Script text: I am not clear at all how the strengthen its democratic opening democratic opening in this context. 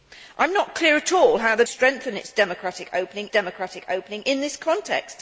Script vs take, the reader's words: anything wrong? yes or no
no